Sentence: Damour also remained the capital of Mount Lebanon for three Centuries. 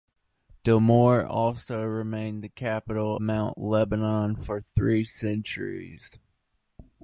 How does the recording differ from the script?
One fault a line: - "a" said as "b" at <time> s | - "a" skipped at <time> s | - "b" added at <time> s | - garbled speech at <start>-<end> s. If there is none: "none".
- "of" skipped at 3.2 s